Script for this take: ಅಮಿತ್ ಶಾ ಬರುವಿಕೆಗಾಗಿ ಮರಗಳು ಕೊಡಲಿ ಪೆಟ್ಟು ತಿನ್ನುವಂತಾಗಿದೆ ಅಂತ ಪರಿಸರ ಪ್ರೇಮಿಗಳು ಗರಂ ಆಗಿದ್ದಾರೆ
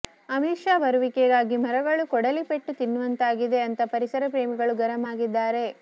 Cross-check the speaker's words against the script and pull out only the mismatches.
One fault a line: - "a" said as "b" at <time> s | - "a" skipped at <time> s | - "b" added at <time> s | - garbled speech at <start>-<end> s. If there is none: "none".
none